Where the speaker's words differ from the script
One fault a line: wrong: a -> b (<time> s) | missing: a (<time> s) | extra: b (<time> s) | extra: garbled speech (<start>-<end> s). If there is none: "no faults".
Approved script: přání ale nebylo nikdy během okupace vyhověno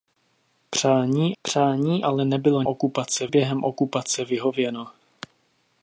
extra: přání (1.4 s)
wrong: nikdy -> okupace (2.7 s)